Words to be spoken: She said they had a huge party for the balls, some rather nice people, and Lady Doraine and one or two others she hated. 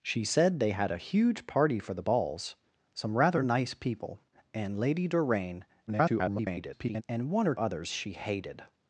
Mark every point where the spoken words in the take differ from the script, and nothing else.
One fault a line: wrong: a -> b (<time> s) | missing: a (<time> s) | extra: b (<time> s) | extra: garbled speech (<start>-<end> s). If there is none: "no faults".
extra: garbled speech (5.9-7.0 s)
missing: two (7.5 s)